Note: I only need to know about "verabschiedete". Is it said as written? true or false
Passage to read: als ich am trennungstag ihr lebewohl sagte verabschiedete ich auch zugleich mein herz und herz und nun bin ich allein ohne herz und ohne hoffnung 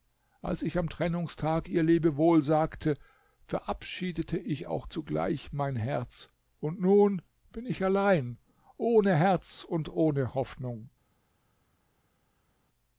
true